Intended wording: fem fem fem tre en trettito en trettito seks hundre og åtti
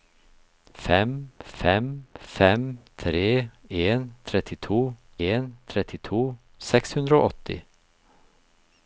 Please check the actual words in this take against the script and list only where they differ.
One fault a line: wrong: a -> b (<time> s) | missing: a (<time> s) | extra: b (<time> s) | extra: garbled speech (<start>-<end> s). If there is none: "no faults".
no faults